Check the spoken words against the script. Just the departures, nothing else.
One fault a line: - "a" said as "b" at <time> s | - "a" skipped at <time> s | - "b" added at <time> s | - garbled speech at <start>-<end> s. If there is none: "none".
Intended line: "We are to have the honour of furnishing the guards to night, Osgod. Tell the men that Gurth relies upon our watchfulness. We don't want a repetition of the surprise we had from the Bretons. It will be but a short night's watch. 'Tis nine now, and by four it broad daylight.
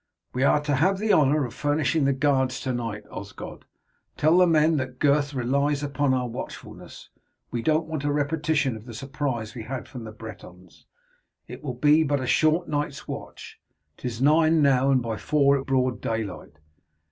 none